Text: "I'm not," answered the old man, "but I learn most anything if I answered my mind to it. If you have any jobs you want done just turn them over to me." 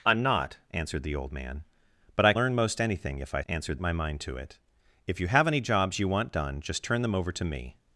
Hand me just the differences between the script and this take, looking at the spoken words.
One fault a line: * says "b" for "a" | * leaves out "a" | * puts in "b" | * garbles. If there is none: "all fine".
all fine